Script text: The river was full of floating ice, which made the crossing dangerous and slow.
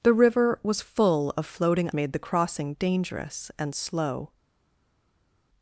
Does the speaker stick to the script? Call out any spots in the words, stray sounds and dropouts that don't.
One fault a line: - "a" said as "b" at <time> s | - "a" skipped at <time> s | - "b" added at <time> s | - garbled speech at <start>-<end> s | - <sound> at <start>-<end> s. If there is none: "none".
- "ice which" skipped at 1.9 s